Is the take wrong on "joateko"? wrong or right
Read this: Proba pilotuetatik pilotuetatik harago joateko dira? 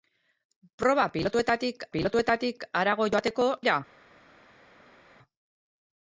right